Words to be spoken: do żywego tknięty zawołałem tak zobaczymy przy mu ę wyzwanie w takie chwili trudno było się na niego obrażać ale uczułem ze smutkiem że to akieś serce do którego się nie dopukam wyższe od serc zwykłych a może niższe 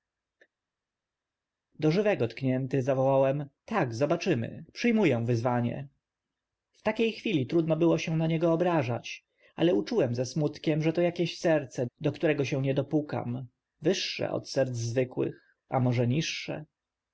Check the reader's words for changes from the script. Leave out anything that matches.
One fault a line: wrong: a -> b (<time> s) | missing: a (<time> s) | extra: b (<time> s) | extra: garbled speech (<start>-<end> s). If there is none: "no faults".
no faults